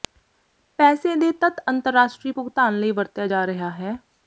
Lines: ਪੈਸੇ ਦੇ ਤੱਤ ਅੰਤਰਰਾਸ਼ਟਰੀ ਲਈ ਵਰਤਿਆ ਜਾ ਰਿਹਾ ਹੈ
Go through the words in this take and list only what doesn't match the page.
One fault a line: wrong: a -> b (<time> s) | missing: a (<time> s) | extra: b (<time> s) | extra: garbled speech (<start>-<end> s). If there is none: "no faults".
extra: ਭੁਗਤਾਨ (2.3 s)